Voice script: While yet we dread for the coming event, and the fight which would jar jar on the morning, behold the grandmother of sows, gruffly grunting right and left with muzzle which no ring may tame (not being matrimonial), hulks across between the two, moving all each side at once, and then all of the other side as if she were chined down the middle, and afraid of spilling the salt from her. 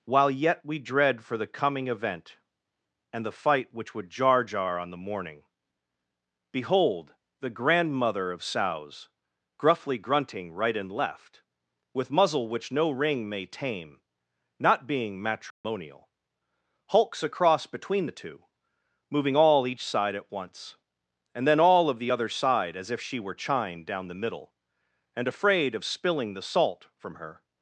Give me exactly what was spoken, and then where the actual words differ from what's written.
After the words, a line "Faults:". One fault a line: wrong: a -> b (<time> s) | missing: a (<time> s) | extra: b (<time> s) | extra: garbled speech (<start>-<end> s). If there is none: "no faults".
While yet we dread for the coming event, and the fight which would jar jar on the morning, behold the grandmother of sows, gruffly grunting right and left with muzzle which no ring may tame (not being matrimonial), hulks across between the two, moving all each side at once, and then all of the other side as if she were chined down the middle, and afraid of spilling the salt from her.
Faults:
no faults